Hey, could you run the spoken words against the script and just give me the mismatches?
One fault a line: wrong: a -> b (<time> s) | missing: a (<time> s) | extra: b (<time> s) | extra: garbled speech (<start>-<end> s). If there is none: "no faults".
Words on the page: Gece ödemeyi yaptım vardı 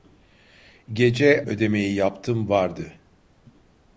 no faults